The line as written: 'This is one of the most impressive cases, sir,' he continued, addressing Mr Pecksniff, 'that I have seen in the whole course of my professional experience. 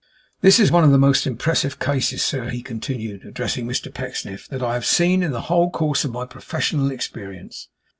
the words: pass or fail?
pass